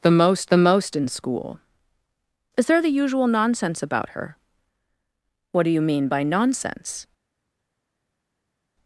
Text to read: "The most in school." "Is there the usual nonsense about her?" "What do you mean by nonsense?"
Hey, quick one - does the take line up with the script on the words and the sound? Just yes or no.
no